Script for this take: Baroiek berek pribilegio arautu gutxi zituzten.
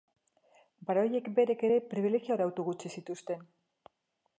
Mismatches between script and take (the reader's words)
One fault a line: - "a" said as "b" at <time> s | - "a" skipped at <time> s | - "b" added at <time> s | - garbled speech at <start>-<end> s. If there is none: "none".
- "ere" added at 1.7 s